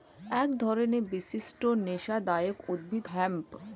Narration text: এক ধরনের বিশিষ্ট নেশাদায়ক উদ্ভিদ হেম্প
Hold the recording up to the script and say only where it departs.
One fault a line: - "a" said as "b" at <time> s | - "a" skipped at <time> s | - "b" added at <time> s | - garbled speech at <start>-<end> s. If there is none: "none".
none